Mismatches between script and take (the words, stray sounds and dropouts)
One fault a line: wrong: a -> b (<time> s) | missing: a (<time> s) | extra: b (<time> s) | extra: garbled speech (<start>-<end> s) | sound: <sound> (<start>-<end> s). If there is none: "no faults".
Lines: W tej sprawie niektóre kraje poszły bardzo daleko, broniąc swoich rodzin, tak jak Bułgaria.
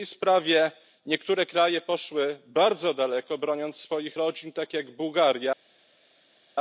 no faults